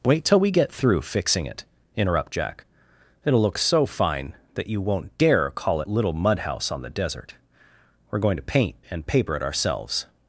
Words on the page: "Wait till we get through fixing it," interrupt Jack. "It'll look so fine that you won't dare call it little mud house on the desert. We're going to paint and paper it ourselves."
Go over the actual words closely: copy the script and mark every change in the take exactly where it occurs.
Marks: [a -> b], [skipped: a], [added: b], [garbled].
"Wait till we get through fixing it," interrupt Jack. "It'll look so fine that you won't dare call it little mud house on the desert. We're going to paint and paper it ourselves."